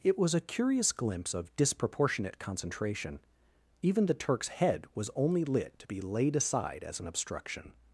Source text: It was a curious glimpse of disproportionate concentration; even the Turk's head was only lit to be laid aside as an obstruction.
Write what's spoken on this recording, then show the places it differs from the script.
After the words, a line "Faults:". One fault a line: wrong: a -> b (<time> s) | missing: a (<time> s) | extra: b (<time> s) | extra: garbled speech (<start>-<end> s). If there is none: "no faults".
It was a curious glimpse of disproportionate concentration; even the Turk's head was only lit to be laid aside as an obstruction.
Faults:
no faults